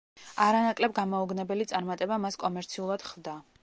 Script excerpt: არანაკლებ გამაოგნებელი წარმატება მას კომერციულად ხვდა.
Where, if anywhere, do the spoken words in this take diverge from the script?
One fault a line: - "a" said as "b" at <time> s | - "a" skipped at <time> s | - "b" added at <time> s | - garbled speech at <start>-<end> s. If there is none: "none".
none